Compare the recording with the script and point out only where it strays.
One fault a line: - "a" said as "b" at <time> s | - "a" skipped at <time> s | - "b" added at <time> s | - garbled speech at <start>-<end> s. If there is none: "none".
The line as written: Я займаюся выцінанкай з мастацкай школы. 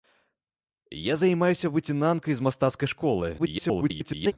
- garbled speech at 3.4-4.3 s